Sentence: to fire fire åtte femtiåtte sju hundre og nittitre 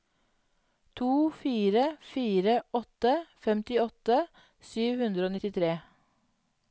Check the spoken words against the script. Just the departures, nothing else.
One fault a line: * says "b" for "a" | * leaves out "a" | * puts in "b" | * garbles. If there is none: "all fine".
all fine